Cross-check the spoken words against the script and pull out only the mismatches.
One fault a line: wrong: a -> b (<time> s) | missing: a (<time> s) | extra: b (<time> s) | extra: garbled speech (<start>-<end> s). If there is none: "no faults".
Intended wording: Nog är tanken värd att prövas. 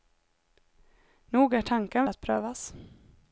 missing: värd (2.0 s)